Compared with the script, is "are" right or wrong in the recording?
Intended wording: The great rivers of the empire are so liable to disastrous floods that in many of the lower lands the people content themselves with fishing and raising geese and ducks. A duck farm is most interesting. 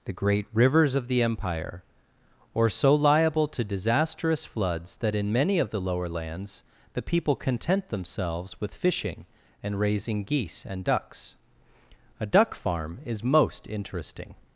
wrong